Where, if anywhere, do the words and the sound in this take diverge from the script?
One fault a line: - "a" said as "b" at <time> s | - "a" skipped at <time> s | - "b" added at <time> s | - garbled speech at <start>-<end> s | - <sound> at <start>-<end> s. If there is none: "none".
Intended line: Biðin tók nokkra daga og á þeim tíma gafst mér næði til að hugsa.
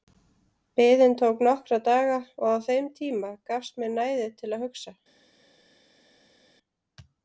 none